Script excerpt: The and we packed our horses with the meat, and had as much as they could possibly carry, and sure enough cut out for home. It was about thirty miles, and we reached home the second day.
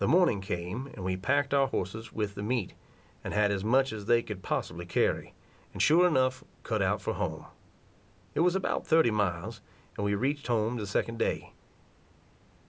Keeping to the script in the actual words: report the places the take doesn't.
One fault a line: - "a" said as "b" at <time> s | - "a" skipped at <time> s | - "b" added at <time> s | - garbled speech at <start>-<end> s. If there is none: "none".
- "morning came" added at 0.1 s